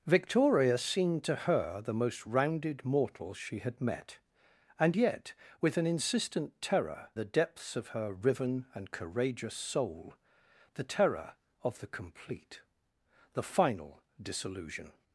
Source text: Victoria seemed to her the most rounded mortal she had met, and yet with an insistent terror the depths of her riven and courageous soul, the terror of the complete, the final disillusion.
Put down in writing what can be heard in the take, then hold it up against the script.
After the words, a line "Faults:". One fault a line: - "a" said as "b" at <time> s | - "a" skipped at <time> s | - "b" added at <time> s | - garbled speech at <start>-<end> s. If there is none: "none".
Victoria seemed to her the most rounded mortal she had met, and yet with an insistent terror the depths of her riven and courageous soul, the terror of the complete, the final disillusion.
Faults:
none